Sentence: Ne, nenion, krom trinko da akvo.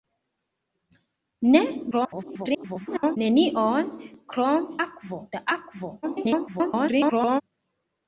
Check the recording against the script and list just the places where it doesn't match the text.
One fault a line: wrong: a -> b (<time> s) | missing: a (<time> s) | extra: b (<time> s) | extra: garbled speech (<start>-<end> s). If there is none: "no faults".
extra: garbled speech (1.9-3.2 s)
wrong: trinko -> akvo (4.8 s)
extra: garbled speech (6.0-7.4 s)